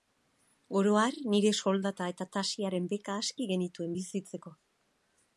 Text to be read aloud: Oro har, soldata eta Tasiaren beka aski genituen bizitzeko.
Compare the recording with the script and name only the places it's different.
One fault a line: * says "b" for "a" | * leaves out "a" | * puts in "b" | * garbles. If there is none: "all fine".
* puts in "nire"